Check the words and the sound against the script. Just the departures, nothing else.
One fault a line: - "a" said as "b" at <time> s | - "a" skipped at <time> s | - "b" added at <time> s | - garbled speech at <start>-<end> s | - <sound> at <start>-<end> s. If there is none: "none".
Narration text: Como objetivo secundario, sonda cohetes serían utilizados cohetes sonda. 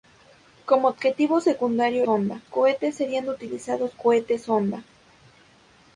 none